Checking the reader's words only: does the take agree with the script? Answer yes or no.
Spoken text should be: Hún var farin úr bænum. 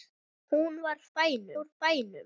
no